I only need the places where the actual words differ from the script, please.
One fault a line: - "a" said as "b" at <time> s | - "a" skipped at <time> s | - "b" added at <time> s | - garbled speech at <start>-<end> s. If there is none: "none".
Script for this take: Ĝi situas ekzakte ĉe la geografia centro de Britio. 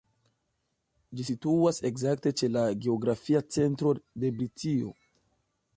none